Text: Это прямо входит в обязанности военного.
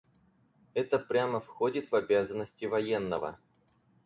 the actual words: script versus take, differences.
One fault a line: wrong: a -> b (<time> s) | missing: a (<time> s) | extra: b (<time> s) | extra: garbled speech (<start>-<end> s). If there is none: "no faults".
no faults